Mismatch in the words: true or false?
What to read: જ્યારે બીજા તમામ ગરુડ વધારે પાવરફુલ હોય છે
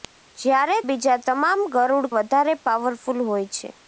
false